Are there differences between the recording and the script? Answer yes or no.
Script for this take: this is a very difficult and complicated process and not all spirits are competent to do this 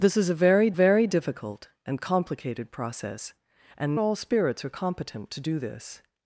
yes